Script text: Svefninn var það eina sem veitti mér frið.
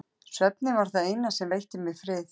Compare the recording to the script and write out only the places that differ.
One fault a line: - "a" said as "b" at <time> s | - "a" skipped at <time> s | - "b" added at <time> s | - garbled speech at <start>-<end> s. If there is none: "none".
none